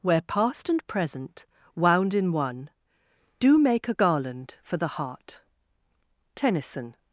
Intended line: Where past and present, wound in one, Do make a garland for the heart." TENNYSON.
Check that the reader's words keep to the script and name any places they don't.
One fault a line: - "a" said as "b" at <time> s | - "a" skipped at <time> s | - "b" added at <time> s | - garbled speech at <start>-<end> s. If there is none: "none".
none